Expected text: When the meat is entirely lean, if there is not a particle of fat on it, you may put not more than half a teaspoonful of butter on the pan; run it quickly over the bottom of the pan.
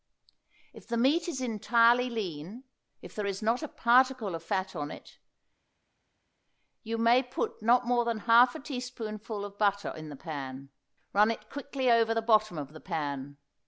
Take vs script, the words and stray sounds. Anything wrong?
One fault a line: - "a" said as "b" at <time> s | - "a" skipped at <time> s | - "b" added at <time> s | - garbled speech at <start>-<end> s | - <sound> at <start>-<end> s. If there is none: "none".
- "When" said as "If" at 0.7 s
- "on" said as "in" at 9.9 s